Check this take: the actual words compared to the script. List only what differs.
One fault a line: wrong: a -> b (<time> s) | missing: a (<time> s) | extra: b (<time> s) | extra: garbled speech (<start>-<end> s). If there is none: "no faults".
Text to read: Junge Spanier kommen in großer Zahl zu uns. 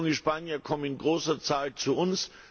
no faults